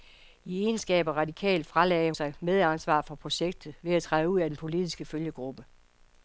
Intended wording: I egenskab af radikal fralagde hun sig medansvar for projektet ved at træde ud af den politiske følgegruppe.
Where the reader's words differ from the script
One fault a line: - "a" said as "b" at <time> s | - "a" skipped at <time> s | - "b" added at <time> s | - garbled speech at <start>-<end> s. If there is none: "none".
- "hun" skipped at 2.1 s